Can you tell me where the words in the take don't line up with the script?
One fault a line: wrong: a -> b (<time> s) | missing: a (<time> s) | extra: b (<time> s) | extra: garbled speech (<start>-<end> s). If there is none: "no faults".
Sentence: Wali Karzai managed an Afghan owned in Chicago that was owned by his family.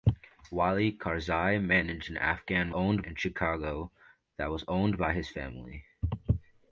no faults